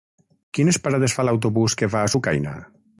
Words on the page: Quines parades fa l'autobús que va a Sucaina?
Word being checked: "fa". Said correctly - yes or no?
yes